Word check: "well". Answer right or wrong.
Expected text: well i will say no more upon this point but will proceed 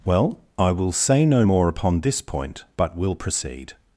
right